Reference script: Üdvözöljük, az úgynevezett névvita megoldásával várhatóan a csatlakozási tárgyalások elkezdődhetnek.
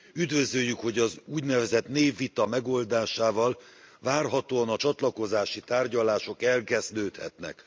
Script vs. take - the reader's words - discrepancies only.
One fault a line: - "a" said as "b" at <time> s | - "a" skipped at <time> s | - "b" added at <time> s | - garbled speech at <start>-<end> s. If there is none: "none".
- "hogy" added at 0.8 s